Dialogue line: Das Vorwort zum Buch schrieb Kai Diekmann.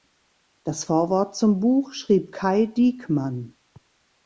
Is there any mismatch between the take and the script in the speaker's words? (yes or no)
no